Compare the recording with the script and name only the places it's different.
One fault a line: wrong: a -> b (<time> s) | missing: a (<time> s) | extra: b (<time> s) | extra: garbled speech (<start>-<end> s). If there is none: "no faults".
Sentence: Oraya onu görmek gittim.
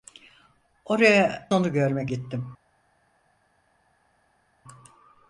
no faults